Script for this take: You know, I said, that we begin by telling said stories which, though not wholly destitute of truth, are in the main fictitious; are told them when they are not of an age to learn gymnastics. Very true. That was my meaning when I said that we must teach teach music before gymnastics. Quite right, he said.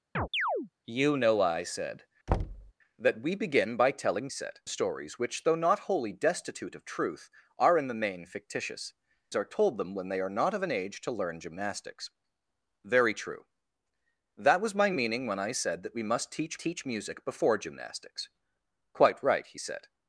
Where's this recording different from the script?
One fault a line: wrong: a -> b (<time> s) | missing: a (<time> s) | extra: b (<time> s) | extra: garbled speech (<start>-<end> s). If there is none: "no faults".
no faults